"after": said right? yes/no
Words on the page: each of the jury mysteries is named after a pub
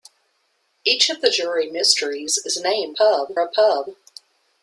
no